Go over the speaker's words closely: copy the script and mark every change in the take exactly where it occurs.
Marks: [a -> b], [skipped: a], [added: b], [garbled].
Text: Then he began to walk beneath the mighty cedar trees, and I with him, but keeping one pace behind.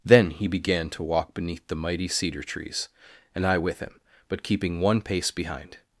Then he began to walk beneath the mighty cedar trees, and I with him, but keeping one pace behind.